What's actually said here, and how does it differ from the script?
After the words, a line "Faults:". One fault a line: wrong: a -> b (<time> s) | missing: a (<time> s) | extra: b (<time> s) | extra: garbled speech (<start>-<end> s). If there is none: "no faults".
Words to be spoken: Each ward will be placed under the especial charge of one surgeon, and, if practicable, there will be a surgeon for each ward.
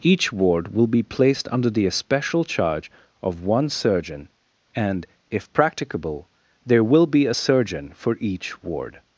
Each ward will be placed under the especial charge of one surgeon, and, if practicable, there will be a surgeon for each ward.
Faults:
no faults